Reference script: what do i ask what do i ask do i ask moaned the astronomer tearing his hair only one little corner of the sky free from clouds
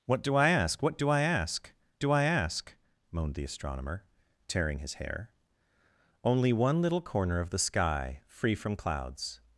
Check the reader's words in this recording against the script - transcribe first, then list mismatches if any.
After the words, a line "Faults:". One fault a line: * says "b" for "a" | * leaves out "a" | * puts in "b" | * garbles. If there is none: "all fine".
what do i ask what do i ask do i ask moaned the astronomer tearing his hair only one little corner of the sky free from clouds
Faults:
all fine